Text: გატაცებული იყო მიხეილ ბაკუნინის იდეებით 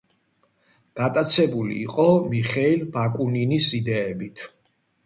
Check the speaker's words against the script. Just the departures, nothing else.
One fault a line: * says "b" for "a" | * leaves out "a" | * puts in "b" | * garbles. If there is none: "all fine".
all fine